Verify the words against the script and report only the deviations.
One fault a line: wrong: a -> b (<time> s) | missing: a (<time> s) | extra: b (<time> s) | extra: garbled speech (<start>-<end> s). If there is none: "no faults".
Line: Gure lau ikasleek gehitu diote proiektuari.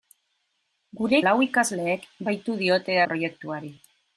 no faults